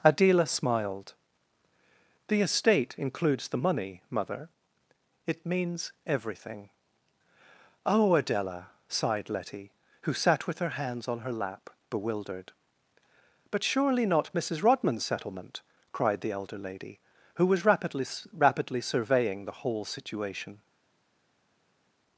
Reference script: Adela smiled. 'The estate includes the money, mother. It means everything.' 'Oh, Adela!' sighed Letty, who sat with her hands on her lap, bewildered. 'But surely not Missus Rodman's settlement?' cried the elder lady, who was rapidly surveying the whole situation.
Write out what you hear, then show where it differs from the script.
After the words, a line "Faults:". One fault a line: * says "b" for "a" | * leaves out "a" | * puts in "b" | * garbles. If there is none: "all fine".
Adela smiled. 'The estate includes the money, mother. It means everything.' 'Oh, Adela!' sighed Letty, who sat with her hands on her lap, bewildered. 'But surely not Missus Rodman's settlement?' cried the elder lady, who was rapidly rapidly surveying the whole situation.
Faults:
* puts in "rapidly"